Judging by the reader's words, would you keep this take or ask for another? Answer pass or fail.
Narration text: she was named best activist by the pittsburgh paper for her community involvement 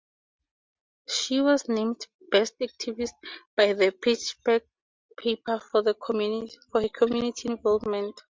pass